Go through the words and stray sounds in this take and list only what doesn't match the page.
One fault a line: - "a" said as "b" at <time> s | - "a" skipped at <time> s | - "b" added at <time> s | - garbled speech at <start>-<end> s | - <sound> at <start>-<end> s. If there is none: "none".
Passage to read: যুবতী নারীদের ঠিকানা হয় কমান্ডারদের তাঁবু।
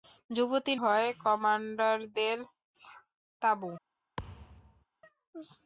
- "নারীদের ঠিকানা" skipped at 0.7 s
- thud at 4.2-4.9 s